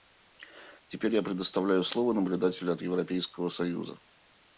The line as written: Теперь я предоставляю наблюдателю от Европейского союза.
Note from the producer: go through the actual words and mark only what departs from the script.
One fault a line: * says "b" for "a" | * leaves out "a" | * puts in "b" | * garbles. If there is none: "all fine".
* puts in "слово"